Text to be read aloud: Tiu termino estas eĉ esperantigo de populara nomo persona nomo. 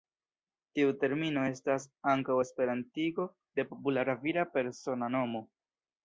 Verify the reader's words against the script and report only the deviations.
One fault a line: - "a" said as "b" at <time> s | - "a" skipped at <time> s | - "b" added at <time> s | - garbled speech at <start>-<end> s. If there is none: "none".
- "eĉ" said as "ankaŭ" at 2.1 s
- "nomo" said as "vira" at 4.3 s